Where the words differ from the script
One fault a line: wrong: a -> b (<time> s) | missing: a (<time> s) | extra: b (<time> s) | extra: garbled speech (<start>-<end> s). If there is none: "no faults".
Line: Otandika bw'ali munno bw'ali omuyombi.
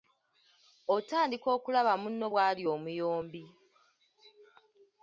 wrong: bw'ali -> okulaba (1.6 s)